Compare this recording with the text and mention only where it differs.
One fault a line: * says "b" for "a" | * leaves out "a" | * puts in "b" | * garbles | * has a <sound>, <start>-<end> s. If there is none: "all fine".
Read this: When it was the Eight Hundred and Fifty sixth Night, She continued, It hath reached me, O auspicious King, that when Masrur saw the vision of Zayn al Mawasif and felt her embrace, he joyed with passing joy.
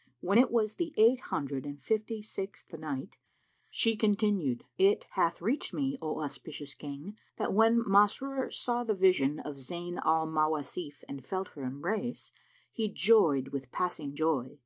all fine